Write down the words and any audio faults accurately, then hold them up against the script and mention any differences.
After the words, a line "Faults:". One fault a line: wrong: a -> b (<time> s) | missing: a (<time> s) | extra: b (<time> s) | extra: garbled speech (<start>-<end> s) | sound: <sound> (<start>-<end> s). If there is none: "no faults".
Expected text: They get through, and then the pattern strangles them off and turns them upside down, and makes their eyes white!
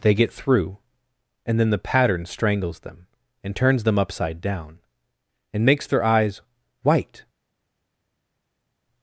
They get through, and then the pattern strangles them and turns them upside down, and makes their eyes white!
Faults:
missing: off (3.1 s)